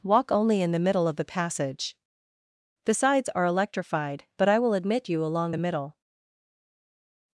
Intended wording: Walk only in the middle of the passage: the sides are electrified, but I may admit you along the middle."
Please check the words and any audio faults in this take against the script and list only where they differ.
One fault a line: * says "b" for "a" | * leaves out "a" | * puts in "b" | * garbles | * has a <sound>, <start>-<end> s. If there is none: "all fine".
* says "will" for "may"